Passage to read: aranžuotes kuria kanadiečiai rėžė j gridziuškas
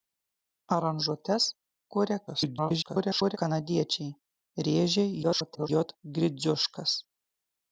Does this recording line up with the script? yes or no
no